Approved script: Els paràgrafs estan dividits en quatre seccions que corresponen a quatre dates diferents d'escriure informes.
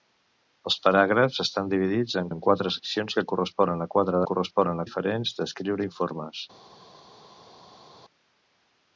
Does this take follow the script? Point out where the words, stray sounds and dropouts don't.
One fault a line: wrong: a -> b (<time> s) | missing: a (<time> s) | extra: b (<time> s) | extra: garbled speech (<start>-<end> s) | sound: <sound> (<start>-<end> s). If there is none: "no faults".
extra: en (2.3 s)
wrong: dates -> corresponen (4.3 s)